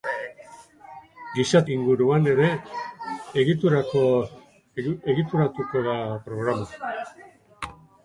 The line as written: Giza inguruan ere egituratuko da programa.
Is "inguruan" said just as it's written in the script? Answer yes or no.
yes